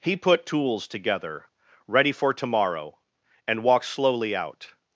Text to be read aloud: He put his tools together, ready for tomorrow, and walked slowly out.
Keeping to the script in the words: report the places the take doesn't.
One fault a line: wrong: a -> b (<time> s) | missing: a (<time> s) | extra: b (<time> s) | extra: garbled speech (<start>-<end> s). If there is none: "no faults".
missing: his (0.5 s)